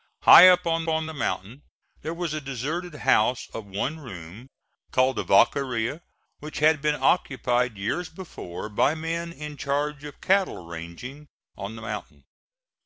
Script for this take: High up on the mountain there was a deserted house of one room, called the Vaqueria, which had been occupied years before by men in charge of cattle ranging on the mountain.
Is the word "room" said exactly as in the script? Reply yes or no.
yes